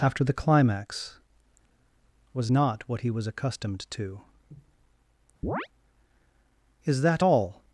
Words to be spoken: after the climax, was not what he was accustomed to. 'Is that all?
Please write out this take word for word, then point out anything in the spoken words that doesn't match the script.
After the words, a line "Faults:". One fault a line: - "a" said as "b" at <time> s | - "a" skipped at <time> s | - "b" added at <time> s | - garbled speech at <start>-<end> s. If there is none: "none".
after the climax, was not what he was accustomed to. 'Is that all?
Faults:
none